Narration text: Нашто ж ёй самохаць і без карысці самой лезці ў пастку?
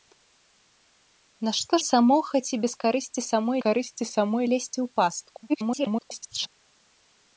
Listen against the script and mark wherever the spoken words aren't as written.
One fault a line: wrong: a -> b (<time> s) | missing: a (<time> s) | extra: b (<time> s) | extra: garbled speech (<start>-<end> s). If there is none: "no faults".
missing: ж (1.7 s)
extra: карысці самой (3.7 s)
extra: garbled speech (5.5-6.5 s)